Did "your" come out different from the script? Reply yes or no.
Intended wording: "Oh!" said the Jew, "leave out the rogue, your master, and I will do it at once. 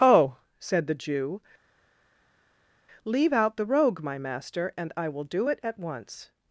yes